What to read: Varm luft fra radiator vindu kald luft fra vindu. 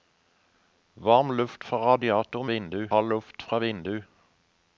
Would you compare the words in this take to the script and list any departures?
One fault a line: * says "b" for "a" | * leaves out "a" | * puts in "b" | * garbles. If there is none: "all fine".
all fine